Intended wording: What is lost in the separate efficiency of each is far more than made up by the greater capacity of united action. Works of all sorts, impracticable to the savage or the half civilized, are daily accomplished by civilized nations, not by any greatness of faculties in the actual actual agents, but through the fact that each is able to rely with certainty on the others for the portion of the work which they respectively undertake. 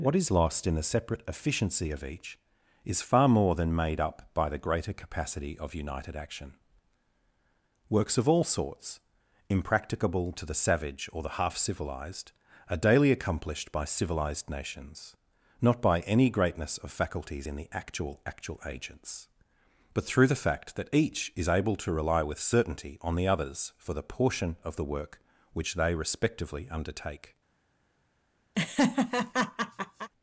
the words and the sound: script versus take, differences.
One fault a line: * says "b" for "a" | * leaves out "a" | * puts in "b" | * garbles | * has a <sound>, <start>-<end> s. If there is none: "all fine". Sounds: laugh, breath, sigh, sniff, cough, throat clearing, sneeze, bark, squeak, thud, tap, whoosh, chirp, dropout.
* has a laugh, 28.5-30.1 s